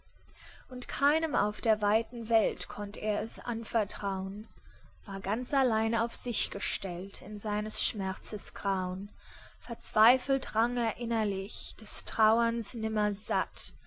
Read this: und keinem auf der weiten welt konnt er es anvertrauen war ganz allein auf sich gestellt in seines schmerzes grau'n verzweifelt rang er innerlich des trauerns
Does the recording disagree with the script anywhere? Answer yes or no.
no